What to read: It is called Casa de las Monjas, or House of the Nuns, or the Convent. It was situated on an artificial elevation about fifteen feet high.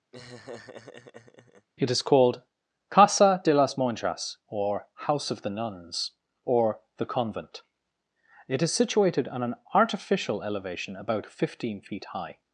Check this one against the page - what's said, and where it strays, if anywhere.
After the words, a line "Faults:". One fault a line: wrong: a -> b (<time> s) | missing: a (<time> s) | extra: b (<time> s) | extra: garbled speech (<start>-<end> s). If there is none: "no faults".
It is called Casa de las Monjas, or House of the Nuns, or the Convent. It is situated on an artificial elevation about fifteen feet high.
Faults:
wrong: was -> is (8.6 s)